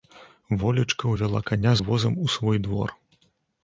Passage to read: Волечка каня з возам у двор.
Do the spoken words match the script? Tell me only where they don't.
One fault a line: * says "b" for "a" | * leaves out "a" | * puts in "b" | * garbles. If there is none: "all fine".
* puts in "ўвяла"
* puts in "свой"